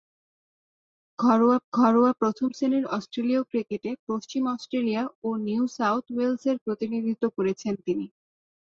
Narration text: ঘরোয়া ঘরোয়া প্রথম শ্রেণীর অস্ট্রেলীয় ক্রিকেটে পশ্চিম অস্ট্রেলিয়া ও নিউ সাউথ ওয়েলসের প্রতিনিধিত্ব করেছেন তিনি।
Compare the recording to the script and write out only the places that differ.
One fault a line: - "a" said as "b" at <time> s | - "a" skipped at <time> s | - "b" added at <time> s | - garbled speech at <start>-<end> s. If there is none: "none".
none